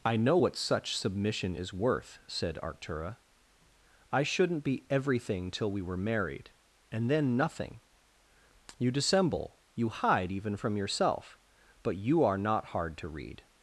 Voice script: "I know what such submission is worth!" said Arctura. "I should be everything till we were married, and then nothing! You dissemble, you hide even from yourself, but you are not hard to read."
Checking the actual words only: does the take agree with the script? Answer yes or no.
no